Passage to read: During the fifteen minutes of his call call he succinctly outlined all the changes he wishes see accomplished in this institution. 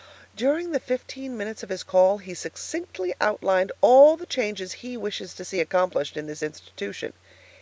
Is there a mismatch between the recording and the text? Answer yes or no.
yes